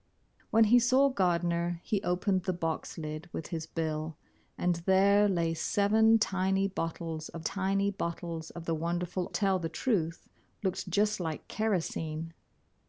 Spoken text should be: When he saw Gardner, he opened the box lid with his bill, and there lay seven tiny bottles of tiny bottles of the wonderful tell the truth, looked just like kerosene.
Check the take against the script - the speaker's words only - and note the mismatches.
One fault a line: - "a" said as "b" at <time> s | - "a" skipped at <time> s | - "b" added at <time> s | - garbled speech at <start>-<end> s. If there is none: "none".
none